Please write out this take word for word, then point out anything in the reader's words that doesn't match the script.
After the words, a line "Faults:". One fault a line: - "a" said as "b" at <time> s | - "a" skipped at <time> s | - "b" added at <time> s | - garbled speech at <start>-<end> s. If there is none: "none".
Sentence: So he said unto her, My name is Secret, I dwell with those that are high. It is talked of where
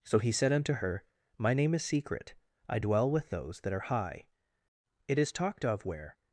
So he said unto her, My name is Secret, I dwell with those that are high. It is talked of where
Faults:
none